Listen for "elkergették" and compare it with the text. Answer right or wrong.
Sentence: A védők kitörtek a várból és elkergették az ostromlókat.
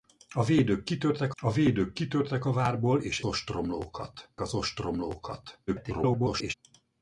wrong